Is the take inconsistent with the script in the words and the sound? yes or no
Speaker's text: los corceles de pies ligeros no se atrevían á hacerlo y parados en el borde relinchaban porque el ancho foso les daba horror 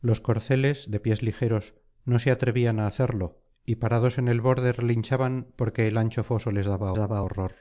yes